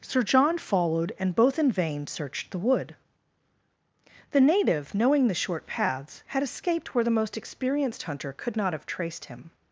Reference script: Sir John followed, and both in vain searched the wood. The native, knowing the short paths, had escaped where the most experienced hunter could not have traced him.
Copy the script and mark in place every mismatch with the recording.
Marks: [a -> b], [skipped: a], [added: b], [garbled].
Sir John followed, and both in vain searched the wood. The native, knowing the short paths, had escaped where the most experienced hunter could not have traced him.